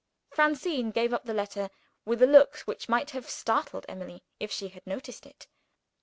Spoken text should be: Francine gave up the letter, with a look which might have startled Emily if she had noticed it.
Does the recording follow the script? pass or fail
pass